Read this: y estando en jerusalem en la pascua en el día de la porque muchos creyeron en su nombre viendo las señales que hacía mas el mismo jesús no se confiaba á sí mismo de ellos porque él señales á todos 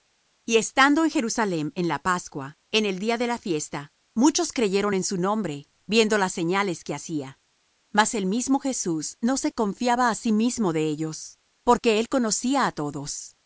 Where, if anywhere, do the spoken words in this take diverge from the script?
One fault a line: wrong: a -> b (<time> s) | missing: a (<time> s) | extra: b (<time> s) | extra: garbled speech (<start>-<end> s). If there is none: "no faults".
wrong: porque -> fiesta (3.4 s)
wrong: señales -> conocía (12.1 s)